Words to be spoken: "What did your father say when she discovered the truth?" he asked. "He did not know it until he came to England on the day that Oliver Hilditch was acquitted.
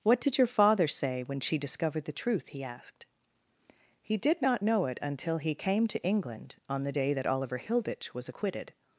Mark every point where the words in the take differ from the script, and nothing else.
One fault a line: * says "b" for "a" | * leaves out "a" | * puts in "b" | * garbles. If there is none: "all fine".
all fine